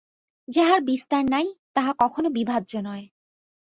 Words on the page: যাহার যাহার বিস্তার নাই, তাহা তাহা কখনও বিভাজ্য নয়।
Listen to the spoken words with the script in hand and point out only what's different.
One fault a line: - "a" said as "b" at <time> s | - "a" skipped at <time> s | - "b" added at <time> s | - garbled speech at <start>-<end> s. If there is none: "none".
- "যাহার" skipped at 0.8 s
- "তাহা" skipped at 1.9 s